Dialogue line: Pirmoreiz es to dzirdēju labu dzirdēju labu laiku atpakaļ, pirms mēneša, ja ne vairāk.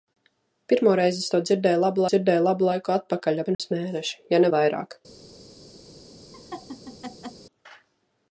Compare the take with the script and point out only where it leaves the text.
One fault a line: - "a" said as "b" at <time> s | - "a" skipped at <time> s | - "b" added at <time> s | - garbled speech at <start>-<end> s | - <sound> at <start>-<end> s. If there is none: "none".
- dropout at 3.5-3.6 s
- laugh at 6.3-7.5 s